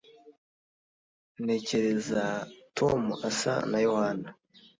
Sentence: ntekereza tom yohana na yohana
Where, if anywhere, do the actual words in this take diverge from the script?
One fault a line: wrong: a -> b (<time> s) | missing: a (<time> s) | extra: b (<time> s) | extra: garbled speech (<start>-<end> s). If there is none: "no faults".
wrong: yohana -> asa (3.3 s)